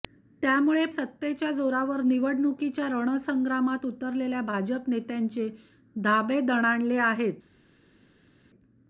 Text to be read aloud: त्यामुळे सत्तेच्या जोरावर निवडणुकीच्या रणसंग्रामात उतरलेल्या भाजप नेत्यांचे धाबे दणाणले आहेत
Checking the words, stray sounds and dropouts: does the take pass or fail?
pass